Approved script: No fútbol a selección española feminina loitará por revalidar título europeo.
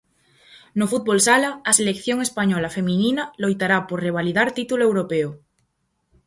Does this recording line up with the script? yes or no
no